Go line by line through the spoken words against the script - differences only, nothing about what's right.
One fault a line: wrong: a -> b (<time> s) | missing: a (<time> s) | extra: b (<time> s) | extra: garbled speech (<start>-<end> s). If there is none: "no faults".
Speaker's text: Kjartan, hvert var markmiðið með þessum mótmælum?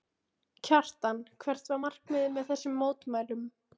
no faults